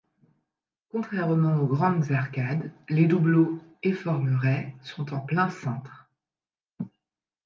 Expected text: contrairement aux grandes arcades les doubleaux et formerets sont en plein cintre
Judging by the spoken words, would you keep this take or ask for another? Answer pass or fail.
pass